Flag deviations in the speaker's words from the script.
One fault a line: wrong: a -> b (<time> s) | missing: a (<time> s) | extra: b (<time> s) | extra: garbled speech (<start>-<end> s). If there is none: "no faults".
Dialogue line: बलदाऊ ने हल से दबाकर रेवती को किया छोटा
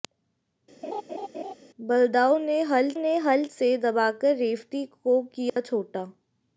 extra: ने हल (2.9 s)